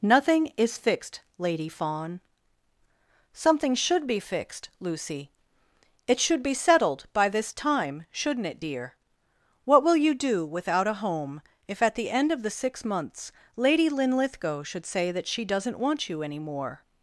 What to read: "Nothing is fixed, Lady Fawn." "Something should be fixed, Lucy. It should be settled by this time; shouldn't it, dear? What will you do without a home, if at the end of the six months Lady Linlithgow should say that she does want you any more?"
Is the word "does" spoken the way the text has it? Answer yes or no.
no